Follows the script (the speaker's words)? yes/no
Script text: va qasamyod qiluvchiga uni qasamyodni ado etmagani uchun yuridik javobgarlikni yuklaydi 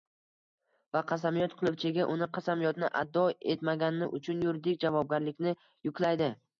yes